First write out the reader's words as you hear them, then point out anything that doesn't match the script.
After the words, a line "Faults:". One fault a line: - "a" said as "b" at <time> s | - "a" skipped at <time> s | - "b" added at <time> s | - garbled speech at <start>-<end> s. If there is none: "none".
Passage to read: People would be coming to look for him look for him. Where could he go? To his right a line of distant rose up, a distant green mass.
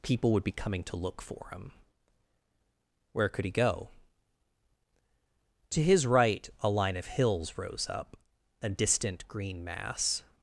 People would be coming to look for him. Where could he go? To his right a line of hills rose up, a distant green mass.
Faults:
- "look for him" skipped at 1.7 s
- "distant" said as "hills" at 7.0 s